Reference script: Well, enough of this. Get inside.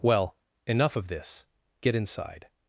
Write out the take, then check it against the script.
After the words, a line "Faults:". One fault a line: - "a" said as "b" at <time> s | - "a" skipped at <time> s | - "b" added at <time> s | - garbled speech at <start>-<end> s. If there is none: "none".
Well, enough of this. Get inside.
Faults:
none